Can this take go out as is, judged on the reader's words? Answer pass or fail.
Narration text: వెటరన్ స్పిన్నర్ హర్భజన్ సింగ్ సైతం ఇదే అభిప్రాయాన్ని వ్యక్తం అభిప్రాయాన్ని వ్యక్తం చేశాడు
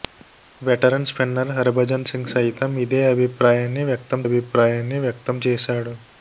pass